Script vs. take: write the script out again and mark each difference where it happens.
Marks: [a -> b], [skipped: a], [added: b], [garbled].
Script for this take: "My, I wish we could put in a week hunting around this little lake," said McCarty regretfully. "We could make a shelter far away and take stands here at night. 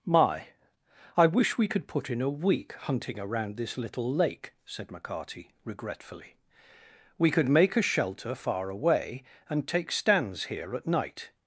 "My, I wish we could put in a week hunting around this little lake," said McCarty regretfully. "We could make a shelter far away and take stands here at night.